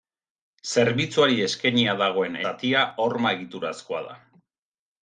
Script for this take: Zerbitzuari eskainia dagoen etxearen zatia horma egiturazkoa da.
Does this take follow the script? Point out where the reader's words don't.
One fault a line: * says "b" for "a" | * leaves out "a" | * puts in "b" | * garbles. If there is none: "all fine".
* leaves out "etxearen"